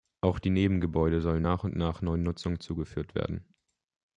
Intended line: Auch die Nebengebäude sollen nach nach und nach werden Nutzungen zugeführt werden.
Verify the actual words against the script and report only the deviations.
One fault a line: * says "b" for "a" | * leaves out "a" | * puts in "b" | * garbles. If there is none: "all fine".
* leaves out "nach"
* says "neuen" for "werden"